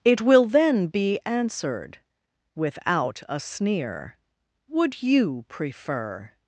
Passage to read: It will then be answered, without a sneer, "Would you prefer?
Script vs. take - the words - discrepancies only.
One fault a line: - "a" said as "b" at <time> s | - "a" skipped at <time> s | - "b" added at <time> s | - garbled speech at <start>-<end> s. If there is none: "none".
none